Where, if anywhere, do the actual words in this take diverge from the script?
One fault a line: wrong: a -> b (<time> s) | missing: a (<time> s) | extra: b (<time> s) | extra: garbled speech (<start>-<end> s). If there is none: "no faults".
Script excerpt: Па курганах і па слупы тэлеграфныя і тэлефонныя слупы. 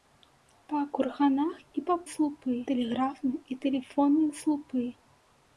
no faults